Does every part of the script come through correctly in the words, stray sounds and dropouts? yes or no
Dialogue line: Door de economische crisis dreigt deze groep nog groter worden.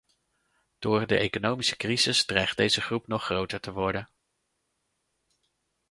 no